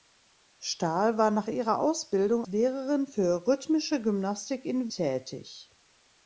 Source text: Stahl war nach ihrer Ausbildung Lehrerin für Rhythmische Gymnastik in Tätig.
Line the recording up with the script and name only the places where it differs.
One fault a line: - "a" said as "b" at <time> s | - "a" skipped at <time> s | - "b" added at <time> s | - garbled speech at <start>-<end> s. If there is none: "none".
none